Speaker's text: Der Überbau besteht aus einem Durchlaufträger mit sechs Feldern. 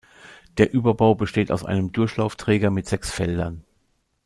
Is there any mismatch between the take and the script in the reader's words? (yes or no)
no